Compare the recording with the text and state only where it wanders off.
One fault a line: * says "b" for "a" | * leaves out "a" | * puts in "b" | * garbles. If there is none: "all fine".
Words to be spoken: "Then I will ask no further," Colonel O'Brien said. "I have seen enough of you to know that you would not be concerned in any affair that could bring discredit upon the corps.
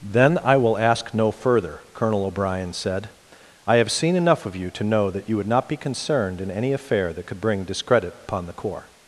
all fine